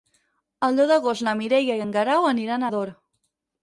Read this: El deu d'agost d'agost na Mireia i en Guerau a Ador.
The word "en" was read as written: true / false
true